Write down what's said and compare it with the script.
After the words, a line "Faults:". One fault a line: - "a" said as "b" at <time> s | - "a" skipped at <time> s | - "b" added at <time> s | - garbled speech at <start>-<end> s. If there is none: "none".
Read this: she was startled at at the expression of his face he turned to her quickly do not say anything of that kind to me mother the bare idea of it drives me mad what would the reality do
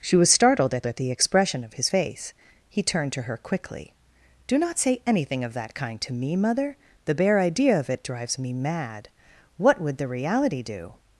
she was startled at at the expression of his face he turned to her quickly do not say anything of that kind to me mother the bare idea of it drives me mad what would the reality do
Faults:
none